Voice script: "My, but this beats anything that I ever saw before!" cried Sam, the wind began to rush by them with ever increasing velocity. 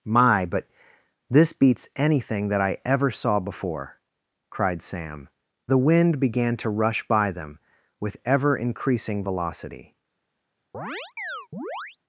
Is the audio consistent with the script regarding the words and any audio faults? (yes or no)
no